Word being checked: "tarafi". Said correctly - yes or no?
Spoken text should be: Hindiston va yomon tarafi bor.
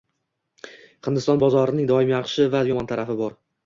yes